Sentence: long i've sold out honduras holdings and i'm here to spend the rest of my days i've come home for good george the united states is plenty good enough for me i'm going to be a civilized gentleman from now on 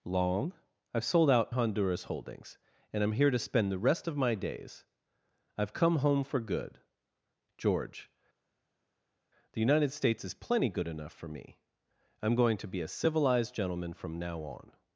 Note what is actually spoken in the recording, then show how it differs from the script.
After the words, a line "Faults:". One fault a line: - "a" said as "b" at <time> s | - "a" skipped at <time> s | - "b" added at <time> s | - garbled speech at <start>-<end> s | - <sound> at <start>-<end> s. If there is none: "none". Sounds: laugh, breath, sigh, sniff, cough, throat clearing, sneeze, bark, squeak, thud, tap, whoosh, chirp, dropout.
long i've sold out honduras holdings and i'm here to spend the rest of my days i've come home for good george the united states is plenty good enough for me i'm going to be a civilized gentleman from now on
Faults:
none